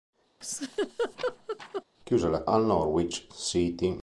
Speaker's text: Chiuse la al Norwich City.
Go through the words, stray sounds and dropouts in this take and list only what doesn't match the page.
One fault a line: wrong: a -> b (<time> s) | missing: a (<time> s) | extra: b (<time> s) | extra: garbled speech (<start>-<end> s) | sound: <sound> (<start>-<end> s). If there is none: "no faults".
sound: laugh (0.4-1.8 s)